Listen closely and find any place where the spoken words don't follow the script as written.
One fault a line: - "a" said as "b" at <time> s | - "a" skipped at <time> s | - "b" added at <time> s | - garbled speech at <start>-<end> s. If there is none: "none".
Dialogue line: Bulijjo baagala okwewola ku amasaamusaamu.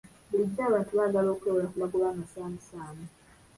- "abantu" added at 0.7 s
- "magoba" added at 1.8 s